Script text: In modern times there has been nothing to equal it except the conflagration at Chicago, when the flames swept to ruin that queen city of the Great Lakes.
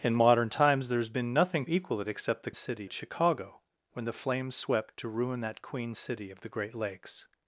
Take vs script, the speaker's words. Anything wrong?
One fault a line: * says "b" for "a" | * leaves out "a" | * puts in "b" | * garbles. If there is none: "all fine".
* leaves out "to"
* says "city" for "conflagration"